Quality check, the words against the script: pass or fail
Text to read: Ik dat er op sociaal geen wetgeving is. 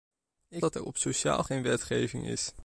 pass